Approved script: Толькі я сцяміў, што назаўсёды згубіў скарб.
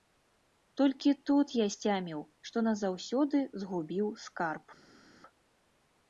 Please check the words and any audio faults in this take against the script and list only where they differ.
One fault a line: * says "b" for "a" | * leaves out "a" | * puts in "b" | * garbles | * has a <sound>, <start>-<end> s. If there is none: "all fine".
* puts in "тут"